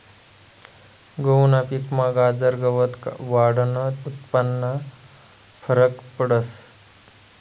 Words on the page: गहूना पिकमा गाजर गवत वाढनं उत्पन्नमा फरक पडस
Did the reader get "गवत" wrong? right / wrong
right